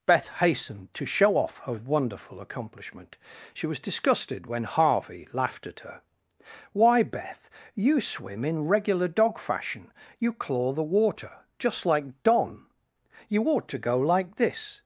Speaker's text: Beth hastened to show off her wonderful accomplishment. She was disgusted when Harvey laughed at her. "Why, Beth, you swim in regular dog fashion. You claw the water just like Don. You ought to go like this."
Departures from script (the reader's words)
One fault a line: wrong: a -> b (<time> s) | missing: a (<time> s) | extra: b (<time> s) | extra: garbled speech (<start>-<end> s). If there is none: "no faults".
no faults